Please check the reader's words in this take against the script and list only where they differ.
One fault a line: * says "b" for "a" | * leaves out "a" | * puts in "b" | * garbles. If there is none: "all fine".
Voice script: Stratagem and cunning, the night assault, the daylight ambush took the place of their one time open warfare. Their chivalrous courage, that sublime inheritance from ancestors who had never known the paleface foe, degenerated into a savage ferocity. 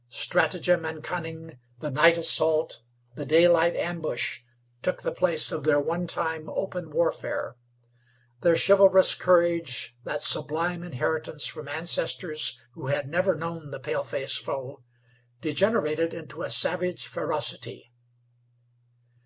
all fine